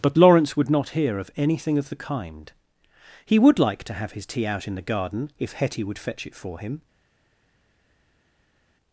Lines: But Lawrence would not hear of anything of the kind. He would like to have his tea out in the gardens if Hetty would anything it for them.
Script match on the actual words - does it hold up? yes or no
no